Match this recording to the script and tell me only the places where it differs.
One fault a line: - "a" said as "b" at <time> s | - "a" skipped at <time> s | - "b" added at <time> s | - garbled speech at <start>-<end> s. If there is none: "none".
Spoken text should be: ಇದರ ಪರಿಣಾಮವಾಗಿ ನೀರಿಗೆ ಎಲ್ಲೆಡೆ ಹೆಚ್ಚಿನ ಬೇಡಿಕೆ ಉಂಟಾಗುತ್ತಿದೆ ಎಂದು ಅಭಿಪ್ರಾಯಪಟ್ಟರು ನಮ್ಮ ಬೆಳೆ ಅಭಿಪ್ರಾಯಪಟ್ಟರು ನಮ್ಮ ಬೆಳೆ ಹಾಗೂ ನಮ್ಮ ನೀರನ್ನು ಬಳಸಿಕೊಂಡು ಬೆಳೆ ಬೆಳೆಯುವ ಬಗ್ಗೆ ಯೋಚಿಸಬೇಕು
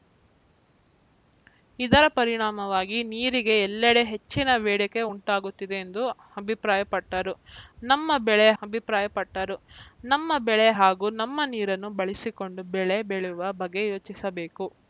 none